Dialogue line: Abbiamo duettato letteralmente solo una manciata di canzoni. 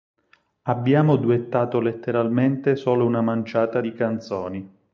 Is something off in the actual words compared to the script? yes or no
no